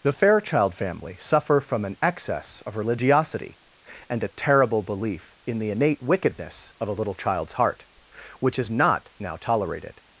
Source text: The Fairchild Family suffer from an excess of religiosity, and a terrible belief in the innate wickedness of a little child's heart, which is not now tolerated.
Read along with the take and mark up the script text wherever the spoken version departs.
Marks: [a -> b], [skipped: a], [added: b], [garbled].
The Fairchild Family suffer from an excess of religiosity, and a terrible belief in the innate wickedness of a little child's heart, which is not now tolerated.